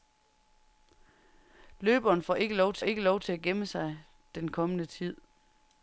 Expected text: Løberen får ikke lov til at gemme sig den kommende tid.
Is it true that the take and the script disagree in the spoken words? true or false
true